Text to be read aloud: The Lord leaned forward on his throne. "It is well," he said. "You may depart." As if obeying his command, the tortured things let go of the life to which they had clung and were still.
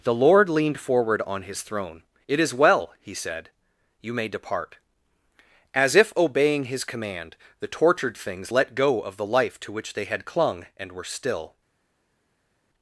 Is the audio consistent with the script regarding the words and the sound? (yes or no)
yes